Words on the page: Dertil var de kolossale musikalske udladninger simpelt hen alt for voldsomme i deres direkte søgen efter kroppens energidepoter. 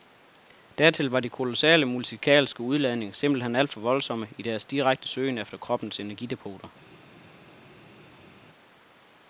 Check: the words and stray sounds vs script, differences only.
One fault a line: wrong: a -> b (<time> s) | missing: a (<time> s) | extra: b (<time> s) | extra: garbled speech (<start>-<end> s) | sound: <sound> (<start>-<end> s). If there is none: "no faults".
no faults